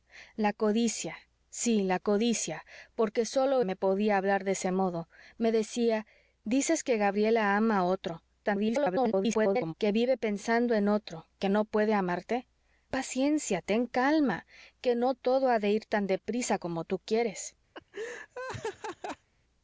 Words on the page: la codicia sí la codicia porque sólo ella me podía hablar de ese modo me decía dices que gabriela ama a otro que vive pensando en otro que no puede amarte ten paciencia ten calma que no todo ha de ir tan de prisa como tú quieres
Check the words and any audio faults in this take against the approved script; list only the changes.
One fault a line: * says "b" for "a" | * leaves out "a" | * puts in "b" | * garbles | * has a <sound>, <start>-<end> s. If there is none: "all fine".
* leaves out "ella"
* garbles
* leaves out "ten"
* has a laugh, 17.7-19.3 s